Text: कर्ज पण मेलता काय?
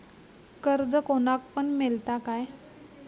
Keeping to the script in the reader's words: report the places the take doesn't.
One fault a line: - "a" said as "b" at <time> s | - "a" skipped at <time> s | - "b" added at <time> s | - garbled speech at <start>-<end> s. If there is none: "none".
- "कोणाक" added at 1.1 s